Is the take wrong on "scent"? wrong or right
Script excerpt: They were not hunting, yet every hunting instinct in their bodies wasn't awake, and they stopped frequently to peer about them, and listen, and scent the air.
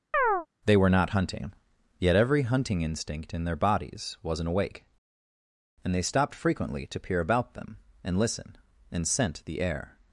right